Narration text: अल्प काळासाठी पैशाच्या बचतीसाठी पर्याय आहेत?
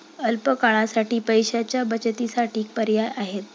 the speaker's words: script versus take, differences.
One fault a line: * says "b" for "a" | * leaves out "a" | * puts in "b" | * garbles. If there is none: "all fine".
all fine